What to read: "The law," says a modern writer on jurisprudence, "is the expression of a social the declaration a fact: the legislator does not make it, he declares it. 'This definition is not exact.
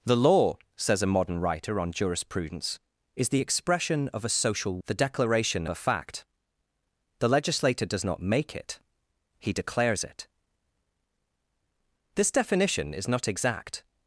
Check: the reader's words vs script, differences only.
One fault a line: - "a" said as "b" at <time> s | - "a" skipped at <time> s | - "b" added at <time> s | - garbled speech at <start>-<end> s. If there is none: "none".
none